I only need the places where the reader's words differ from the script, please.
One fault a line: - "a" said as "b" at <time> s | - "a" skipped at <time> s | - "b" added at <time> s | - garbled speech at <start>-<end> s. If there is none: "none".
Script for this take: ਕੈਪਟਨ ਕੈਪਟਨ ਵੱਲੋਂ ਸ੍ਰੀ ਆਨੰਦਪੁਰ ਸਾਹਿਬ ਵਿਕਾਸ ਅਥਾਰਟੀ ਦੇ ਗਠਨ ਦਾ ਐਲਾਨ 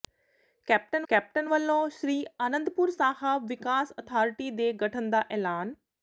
none